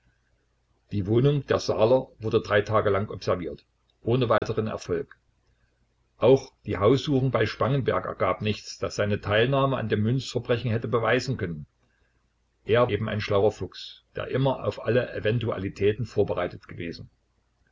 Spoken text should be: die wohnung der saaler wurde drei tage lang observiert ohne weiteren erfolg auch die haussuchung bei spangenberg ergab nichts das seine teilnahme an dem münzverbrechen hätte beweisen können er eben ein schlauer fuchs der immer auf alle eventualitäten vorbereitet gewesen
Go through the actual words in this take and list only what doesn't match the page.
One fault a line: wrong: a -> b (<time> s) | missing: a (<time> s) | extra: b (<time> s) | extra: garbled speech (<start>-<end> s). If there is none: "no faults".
no faults